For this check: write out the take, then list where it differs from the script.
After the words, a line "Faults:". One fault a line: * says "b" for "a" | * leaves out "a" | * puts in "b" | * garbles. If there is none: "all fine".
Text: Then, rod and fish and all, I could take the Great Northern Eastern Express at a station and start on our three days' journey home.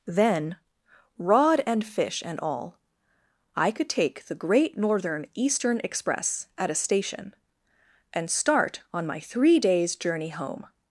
Then, rod and fish and all, I could take the Great Northern Eastern Express at a station and start on my three days' journey home.
Faults:
* says "my" for "our"